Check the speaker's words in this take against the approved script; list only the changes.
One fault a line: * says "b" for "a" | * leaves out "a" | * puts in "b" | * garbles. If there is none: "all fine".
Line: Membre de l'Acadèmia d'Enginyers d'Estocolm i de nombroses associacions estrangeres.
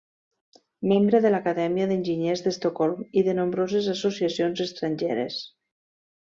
all fine